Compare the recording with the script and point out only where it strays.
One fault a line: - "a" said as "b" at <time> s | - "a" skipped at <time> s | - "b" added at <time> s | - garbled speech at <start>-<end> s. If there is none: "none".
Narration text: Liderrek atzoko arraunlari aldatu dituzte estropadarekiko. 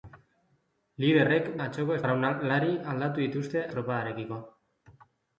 none